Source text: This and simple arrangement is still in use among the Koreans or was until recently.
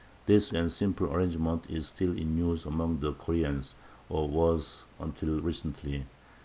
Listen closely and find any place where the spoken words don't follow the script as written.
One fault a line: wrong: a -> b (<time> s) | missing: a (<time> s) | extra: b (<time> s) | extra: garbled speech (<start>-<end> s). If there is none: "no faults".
no faults